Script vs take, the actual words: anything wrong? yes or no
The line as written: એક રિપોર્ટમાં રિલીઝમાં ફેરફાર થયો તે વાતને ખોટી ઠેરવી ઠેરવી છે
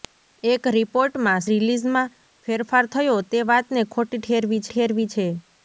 no